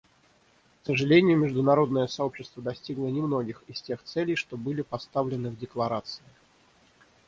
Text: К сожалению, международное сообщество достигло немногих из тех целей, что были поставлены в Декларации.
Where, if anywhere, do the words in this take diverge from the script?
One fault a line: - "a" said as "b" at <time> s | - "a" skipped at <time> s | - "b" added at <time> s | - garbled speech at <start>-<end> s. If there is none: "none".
none